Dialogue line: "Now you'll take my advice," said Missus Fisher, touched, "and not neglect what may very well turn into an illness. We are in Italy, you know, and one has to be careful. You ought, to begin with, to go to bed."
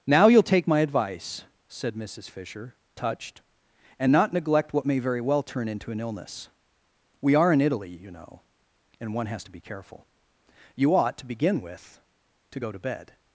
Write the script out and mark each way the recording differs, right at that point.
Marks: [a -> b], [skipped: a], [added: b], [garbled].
"Now you'll take my advice," said Missus Fisher, touched, "and not neglect what may very well turn into an illness. We are in Italy, you know, and one has to be careful. You ought, to begin with, to go to bed."